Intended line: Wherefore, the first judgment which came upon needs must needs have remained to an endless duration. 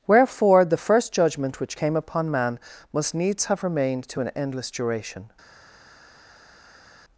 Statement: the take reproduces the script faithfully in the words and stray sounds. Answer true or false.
false